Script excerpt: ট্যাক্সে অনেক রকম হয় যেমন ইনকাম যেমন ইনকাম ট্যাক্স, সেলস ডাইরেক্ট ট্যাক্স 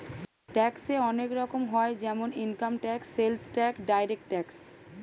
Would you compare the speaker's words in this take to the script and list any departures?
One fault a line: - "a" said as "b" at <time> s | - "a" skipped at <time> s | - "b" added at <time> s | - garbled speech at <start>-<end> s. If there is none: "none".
- "যেমন ইনকাম" said as "ট্যাক্স সেলস" at 2.7 s
- "সেলস" skipped at 3.8 s